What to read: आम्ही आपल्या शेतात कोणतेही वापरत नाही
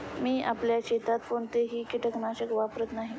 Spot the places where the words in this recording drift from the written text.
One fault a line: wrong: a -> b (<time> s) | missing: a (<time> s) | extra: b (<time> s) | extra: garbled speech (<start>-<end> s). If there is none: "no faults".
wrong: आम्ही -> मी (0.2 s)
extra: कीटकनाशक (1.8 s)